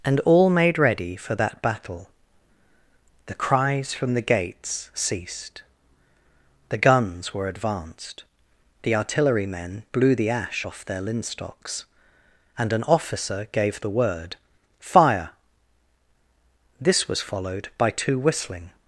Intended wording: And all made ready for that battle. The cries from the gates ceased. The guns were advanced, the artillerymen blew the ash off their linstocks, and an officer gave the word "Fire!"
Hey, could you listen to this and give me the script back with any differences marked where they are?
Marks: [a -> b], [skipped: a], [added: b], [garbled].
And all made ready for that battle. The cries from the gates ceased. The guns were advanced, the artillerymen blew the ash off their linstocks, and an officer gave the word "Fire!" [added: This was followed by two whistling]